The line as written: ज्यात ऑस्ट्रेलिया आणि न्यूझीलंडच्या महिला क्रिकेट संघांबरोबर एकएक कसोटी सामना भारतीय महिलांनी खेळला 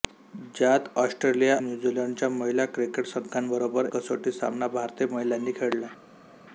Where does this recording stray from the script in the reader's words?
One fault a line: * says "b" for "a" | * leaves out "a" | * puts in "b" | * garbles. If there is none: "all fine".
* leaves out "आणि"
* leaves out "एकएक"